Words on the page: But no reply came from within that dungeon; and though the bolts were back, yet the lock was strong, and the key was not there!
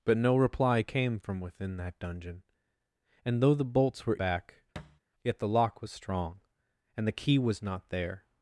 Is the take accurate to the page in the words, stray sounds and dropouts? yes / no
no